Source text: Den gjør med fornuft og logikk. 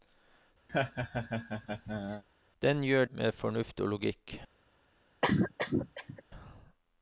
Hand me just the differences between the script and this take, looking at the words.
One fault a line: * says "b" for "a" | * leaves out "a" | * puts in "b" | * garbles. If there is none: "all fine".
all fine